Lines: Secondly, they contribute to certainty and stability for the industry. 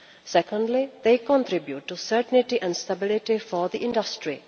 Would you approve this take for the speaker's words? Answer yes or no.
yes